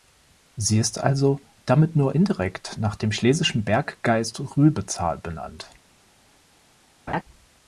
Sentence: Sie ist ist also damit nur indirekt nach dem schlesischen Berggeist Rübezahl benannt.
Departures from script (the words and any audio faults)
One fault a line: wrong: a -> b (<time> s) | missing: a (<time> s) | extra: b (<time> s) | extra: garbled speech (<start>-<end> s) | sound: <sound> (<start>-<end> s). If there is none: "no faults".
missing: ist (1.0 s)
sound: laugh (7.1-7.2 s)